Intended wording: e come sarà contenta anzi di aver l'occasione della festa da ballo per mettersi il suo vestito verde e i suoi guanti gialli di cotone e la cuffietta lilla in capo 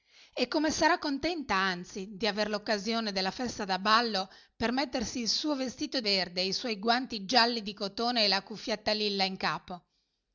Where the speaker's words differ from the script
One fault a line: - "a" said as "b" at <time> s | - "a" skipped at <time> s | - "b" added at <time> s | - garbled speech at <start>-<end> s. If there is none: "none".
none